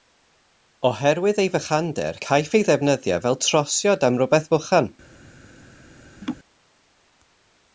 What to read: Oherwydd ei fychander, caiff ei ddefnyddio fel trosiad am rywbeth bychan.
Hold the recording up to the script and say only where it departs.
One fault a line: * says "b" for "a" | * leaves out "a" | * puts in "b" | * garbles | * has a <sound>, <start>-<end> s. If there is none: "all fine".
* has a laugh, 6.2-6.4 s